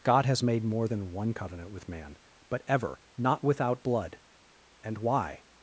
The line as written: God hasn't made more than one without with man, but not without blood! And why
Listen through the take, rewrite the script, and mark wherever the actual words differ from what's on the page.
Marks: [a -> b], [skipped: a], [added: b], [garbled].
God [hasn't -> has] made more than one [without -> covenant] with man, but [added: ever] not without blood! And why